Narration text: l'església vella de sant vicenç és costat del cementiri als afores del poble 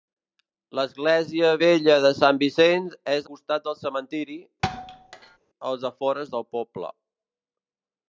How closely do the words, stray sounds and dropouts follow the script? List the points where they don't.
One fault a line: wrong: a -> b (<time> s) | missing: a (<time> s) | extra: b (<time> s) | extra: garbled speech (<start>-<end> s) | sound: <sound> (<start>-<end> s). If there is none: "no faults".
sound: thud (4.6-5.4 s)